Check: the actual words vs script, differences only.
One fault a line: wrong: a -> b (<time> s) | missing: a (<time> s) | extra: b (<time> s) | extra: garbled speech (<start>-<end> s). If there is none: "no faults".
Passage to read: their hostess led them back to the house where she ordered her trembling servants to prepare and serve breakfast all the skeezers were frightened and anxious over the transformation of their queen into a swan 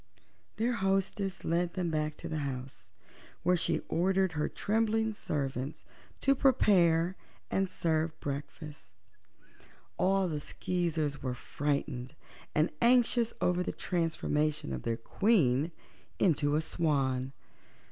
no faults